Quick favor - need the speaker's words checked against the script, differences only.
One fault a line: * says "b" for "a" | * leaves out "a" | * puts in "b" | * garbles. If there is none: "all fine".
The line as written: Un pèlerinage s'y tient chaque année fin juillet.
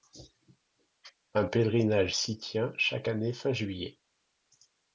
all fine